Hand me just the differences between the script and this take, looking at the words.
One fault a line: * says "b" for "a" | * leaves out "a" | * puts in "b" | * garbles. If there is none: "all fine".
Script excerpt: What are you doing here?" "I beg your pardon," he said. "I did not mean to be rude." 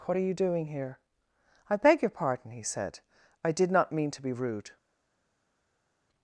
all fine